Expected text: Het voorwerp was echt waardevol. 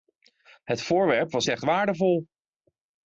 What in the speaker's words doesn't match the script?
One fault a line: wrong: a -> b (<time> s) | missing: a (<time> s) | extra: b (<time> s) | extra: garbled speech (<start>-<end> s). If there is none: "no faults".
no faults